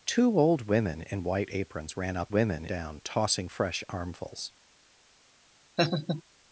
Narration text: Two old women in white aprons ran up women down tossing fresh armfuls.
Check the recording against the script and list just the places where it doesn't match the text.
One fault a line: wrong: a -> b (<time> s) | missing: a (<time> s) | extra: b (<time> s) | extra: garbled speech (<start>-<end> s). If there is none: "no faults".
no faults